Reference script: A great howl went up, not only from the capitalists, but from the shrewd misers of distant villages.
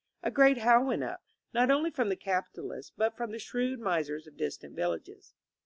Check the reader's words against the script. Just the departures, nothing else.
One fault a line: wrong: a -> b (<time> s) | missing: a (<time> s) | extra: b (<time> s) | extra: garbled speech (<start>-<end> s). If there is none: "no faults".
no faults